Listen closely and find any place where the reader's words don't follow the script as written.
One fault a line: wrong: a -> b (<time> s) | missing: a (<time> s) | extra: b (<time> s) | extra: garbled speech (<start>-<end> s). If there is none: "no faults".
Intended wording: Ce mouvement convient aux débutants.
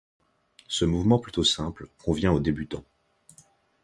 extra: plutôt simple (1.2 s)